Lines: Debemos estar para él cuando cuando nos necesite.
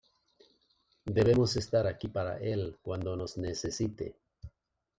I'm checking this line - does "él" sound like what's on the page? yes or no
yes